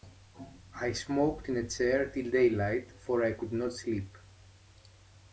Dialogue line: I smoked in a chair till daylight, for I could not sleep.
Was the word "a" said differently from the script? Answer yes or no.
no